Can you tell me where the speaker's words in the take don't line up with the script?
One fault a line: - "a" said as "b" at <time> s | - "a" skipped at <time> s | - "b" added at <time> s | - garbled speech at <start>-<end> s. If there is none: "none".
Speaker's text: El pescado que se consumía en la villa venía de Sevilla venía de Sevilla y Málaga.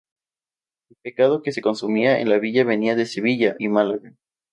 - "venía de Sevilla" skipped at 3.6 s